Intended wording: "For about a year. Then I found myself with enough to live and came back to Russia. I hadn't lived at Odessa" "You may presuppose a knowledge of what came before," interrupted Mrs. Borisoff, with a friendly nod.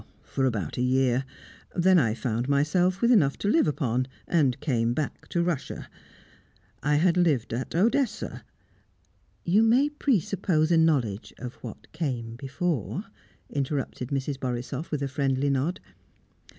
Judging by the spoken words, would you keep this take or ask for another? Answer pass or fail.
fail